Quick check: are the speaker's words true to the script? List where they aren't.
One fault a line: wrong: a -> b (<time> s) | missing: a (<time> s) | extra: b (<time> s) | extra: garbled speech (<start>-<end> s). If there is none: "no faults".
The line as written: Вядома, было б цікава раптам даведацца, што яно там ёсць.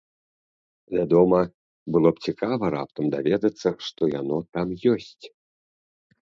no faults